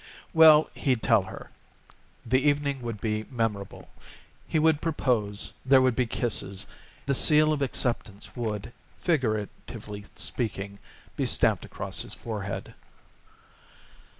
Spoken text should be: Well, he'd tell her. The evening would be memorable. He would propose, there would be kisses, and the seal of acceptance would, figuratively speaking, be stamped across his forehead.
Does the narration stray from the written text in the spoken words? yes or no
yes